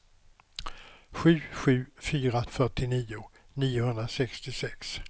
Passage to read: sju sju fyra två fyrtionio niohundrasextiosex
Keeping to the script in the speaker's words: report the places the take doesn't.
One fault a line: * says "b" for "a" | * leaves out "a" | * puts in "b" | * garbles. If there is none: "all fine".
* leaves out "två"